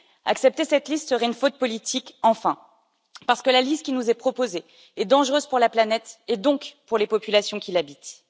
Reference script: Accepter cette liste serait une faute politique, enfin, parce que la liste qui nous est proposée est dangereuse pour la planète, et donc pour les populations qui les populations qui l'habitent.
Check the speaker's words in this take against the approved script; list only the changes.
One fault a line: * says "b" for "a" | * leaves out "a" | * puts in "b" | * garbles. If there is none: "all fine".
* leaves out "les populations qui"